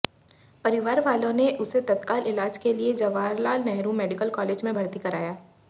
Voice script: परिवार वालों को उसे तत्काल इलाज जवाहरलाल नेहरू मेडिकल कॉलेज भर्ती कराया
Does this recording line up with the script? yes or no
no